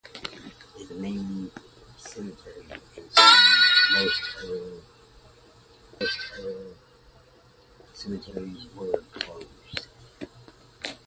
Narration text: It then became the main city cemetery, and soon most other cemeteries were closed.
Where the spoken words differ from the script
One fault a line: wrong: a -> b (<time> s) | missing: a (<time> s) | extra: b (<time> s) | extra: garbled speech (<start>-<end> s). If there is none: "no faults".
missing: then became (0.9 s)
missing: city (1.5 s)
extra: most other (6.0 s)